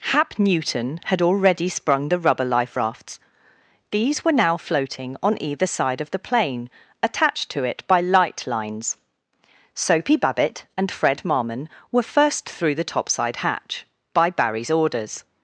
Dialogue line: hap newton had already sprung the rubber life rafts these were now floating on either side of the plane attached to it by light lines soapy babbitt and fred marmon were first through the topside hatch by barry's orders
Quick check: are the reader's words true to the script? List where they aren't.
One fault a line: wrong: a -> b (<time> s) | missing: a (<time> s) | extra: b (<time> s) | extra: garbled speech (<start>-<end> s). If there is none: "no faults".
no faults